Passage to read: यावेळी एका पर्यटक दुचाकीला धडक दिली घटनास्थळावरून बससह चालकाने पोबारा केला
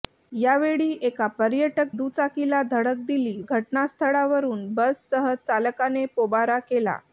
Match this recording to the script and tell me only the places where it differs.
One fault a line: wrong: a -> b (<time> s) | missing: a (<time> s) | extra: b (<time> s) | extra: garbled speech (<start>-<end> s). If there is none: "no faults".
no faults